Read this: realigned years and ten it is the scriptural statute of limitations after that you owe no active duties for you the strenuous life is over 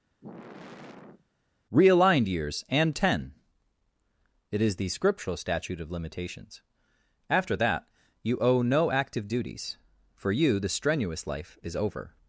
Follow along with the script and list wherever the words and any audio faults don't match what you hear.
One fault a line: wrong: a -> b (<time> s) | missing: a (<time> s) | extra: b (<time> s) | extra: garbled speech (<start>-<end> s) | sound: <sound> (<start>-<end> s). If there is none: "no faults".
sound: sigh (0.2-1.3 s)